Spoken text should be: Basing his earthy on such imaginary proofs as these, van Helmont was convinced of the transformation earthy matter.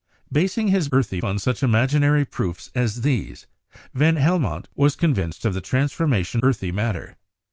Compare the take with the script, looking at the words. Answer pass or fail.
pass